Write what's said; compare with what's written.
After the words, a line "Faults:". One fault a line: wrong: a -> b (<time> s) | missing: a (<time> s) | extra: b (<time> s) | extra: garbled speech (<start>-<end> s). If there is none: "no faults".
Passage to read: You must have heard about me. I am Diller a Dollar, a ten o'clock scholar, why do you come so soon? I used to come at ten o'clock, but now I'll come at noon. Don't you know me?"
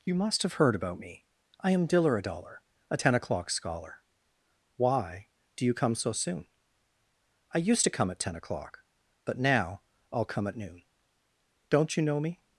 You must have heard about me. I am Diller a Dollar, a ten o'clock scholar, why do you come so soon? I used to come at ten o'clock, but now I'll come at noon. Don't you know me?"
Faults:
no faults